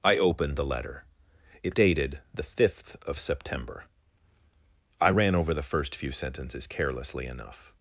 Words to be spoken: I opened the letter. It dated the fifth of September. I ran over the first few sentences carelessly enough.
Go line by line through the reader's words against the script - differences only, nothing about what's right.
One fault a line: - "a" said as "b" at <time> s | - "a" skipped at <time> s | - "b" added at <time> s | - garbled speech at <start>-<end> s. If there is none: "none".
none